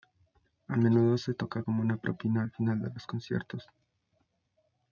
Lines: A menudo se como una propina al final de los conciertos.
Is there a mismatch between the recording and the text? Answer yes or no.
yes